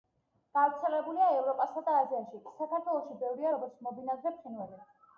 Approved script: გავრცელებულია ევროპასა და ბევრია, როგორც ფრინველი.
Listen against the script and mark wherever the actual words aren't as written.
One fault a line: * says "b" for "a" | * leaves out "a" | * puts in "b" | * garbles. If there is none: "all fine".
* puts in "აზიაში საქართველოში"
* puts in "მობინადრე"